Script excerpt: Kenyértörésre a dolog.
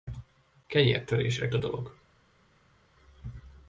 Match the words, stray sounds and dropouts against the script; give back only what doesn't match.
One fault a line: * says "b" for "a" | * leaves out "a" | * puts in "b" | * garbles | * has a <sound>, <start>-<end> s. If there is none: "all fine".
all fine